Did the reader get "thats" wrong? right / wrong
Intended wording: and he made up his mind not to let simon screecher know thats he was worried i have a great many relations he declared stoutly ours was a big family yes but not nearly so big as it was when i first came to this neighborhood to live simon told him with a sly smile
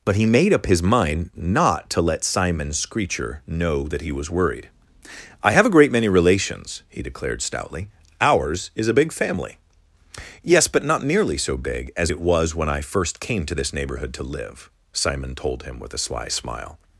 wrong